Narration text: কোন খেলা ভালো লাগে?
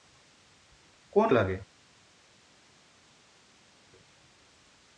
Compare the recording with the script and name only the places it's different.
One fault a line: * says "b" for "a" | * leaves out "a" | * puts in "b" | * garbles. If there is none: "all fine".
* leaves out "খেলা ভালো"